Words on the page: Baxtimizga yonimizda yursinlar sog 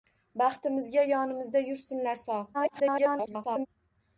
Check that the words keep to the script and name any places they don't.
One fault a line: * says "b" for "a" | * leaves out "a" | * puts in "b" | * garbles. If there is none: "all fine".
* garbles